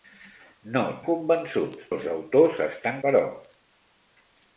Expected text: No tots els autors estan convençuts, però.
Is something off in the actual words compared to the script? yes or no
yes